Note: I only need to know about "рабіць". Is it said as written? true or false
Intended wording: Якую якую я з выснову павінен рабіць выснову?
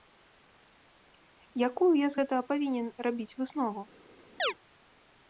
true